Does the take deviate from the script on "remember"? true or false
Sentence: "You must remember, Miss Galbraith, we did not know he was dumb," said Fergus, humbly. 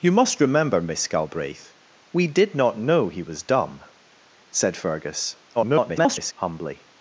false